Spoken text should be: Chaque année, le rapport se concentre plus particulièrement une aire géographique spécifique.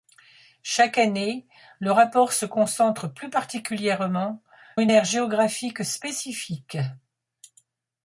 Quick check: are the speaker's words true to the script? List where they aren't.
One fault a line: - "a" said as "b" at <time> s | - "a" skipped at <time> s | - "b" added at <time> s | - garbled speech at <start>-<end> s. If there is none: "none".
none